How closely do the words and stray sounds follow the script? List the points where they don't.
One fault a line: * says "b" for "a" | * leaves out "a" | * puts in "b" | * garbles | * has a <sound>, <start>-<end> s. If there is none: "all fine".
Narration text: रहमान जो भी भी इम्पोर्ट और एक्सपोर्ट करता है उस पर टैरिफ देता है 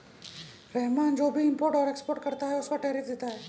* leaves out "भी"